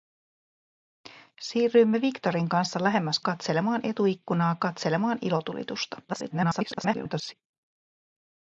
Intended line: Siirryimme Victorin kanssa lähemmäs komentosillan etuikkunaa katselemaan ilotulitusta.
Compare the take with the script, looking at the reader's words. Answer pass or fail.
fail